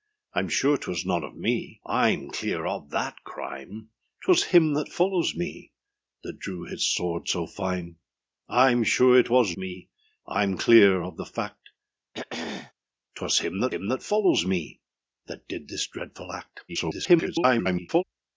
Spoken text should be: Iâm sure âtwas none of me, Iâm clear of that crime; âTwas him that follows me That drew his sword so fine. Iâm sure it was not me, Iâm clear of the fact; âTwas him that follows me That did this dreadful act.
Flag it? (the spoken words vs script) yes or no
yes